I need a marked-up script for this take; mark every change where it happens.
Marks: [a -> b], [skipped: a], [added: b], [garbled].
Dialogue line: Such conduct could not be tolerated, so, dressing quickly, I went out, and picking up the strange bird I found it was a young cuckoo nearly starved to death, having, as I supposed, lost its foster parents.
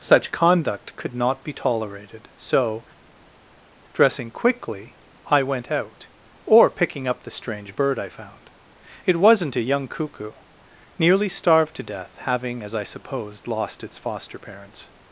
Such conduct could not be tolerated, so, dressing quickly, I went out, [and -> or] picking up the strange bird I found it [was -> wasn't] a young cuckoo nearly starved to death, having, as I supposed, lost its foster parents.